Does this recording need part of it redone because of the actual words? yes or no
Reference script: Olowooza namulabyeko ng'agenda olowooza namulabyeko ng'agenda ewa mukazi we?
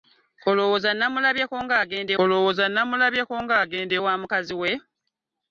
no